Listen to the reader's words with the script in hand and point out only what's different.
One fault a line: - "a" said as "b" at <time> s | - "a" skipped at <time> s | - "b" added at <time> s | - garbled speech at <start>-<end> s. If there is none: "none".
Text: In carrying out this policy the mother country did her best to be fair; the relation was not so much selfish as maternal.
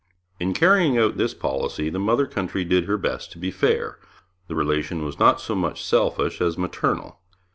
none